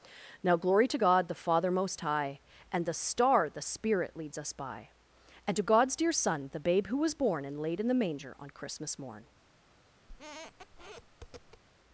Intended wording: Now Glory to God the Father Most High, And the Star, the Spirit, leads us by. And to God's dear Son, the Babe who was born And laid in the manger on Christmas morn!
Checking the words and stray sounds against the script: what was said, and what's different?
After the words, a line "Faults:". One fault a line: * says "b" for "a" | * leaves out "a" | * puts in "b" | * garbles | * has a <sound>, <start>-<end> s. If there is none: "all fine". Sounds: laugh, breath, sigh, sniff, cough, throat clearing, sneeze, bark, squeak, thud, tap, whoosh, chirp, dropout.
Now Glory to God the Father Most High, And the Star, the Spirit, leads us by. And to God's dear Son, the Babe who was born And laid in the manger on Christmas morn!
Faults:
* has a squeak, 10.1-11.6 s